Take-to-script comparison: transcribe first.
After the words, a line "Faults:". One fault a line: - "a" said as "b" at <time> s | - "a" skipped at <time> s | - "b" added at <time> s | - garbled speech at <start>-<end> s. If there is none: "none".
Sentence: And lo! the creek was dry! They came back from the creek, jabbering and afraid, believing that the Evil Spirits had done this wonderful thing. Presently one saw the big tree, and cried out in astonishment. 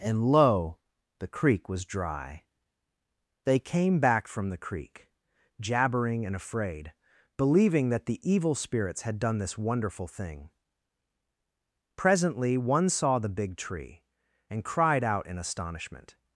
And lo! the creek was dry! They came back from the creek, jabbering and afraid, believing that the Evil Spirits had done this wonderful thing. Presently one saw the big tree, and cried out in astonishment.
Faults:
none